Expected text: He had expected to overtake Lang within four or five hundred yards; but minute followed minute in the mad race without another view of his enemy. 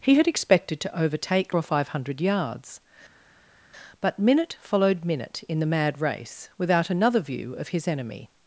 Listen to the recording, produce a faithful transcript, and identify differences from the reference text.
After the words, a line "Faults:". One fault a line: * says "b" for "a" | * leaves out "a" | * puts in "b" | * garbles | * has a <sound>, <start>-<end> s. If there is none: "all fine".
He had expected to overtake Or five hundred yards; but minute followed minute in the mad race without another view of his enemy.
Faults:
* leaves out "Lang within four"